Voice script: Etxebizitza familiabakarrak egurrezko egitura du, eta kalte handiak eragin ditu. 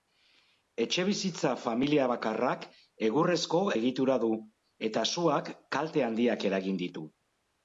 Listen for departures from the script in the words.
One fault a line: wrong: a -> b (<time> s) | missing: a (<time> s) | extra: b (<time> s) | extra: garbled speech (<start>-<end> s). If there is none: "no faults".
extra: suak (5.2 s)